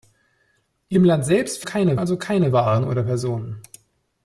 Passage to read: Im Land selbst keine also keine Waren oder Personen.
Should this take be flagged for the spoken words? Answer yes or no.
no